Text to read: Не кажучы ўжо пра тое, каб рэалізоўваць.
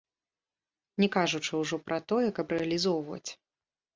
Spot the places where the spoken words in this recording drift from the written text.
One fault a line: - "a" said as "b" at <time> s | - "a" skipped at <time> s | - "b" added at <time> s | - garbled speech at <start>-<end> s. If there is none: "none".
none